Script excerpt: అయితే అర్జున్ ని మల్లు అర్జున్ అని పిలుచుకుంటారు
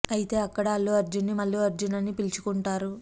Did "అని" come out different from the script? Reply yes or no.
no